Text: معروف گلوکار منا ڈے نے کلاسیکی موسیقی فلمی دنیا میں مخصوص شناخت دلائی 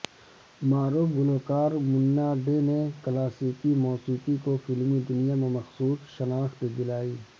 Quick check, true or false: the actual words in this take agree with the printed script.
false